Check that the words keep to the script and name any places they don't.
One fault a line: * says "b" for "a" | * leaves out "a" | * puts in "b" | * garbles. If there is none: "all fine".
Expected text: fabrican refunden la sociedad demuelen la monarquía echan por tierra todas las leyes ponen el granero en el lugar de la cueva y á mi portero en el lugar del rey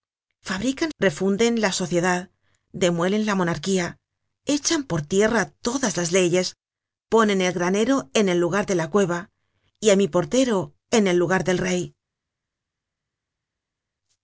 all fine